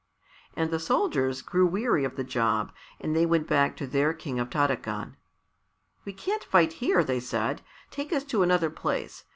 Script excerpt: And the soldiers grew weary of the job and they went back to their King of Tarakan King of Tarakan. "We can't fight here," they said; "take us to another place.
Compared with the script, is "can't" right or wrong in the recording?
right